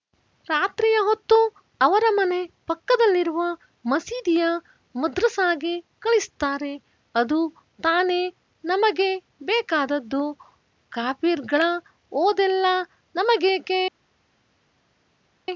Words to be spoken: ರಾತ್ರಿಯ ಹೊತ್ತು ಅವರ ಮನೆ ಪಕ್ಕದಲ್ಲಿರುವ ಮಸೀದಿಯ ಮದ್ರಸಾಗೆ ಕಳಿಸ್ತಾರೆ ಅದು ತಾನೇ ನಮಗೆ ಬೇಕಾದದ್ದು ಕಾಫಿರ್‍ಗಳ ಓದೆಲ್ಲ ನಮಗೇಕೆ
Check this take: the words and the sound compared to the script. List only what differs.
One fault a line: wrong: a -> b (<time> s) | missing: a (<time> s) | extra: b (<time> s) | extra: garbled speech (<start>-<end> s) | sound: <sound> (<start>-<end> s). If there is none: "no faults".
no faults